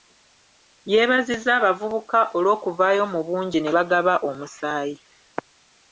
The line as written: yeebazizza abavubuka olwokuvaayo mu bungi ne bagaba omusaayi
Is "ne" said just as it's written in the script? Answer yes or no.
yes